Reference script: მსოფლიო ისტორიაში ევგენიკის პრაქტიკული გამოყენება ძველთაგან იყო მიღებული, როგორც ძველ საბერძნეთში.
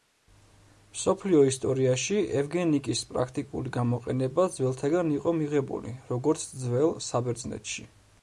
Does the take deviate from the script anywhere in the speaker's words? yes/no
no